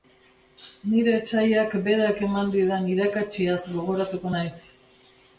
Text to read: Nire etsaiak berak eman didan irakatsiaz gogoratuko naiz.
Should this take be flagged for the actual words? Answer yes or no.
no